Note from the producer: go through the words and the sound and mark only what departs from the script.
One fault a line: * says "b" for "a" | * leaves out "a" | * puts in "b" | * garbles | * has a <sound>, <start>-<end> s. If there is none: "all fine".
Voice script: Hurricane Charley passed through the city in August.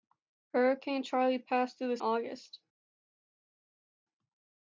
* leaves out "city in"